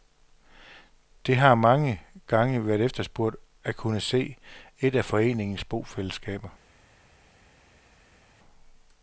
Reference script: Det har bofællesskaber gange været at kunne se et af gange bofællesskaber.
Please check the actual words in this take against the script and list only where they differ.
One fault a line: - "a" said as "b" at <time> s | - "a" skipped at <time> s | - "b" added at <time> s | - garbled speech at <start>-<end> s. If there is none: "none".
- "bofællesskaber" said as "mange" at 1.6 s
- "efterspurgt" added at 2.8 s
- "gange" said as "foreningens" at 5.0 s